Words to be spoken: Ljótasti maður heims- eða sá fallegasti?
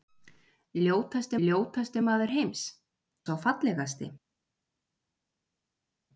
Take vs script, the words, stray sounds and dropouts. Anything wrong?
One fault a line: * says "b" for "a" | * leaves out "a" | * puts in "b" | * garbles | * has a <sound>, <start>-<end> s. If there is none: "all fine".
* puts in "ljótasti"
* leaves out "eða"